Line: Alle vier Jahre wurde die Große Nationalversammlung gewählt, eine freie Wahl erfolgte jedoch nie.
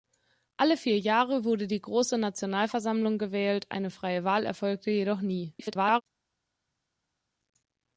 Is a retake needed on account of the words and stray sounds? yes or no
yes